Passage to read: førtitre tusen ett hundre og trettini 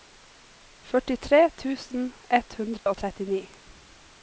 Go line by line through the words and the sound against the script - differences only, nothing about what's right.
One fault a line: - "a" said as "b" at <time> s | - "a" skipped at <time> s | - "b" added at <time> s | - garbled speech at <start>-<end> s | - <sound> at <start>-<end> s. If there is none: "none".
- dropout at 2.8-2.9 s